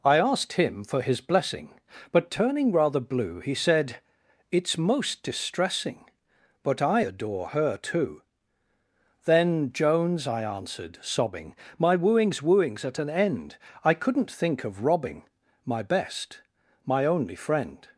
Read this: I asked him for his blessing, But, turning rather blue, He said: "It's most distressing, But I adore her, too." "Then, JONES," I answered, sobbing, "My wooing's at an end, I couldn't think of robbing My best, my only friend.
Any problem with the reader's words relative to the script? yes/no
yes